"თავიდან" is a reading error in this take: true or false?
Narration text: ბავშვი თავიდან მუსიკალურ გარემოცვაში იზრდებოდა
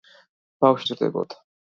true